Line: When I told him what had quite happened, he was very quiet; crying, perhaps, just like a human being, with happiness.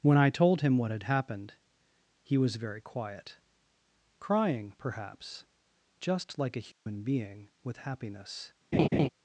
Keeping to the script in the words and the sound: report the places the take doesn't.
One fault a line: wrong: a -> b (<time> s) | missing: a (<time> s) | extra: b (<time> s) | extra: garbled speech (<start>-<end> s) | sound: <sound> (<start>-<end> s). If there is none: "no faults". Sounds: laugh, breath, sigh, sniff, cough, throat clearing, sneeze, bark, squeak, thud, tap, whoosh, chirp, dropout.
missing: quite (1.0 s)
sound: dropout (6.7-6.9 s)
sound: laugh (8.7-9.1 s)